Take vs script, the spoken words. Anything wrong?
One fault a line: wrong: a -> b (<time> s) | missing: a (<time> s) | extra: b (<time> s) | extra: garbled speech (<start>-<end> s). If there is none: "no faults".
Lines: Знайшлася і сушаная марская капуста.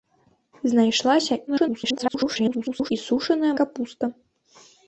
extra: garbled speech (1.5-2.9 s)
missing: марская (3.5 s)